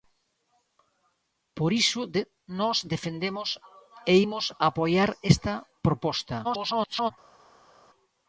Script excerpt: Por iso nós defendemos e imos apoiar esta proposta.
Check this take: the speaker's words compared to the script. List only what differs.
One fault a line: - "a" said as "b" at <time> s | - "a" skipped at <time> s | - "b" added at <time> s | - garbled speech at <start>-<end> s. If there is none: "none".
- garbled speech at 6.4-7.1 s